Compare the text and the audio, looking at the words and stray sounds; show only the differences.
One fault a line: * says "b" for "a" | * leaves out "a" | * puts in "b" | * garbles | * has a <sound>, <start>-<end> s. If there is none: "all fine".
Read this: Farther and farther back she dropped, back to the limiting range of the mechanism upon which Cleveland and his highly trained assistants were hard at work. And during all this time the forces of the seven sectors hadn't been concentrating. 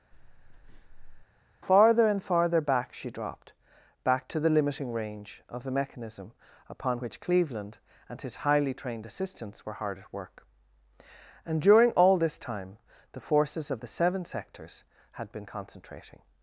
* has a breath, 0.1-1.2 s
* says "had" for "hadn't"